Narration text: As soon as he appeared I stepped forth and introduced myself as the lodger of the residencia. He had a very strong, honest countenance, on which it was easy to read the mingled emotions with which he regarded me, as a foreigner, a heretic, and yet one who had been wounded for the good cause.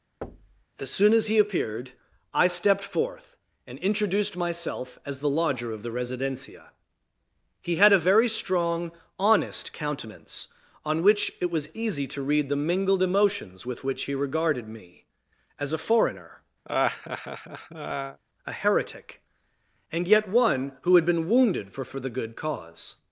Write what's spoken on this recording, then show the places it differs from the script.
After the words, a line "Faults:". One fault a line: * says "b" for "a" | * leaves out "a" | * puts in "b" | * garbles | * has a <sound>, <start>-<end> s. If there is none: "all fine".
As soon as he appeared I stepped forth and introduced myself as the lodger of the residencia. He had a very strong, honest countenance, on which it was easy to read the mingled emotions with which he regarded me, as a foreigner, a heretic, and yet one who had been wounded for for the good cause.
Faults:
* has a thud, 0.2-0.7 s
* has a laugh, 16.6-18.2 s
* puts in "for"